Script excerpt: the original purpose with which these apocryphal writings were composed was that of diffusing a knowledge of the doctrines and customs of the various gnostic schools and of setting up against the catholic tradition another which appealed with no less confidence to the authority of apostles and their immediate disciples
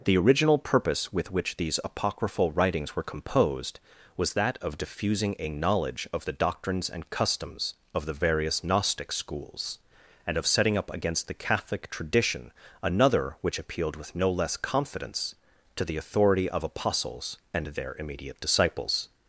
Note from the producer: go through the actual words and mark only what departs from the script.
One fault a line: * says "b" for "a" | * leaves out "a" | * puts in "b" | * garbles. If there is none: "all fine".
all fine